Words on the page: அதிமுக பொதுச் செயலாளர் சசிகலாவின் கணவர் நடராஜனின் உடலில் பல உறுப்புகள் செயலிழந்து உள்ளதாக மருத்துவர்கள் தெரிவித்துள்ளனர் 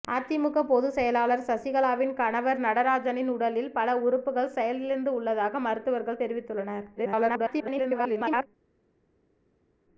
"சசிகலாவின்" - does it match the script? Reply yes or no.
yes